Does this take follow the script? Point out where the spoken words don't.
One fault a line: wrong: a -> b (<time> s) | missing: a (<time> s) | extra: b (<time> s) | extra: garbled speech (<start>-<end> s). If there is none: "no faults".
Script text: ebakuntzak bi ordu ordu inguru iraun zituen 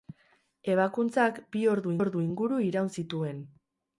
no faults